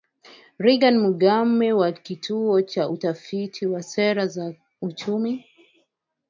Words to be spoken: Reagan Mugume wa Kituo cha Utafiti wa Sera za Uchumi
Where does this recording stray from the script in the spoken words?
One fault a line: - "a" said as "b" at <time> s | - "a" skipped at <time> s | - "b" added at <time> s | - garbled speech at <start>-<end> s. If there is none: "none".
none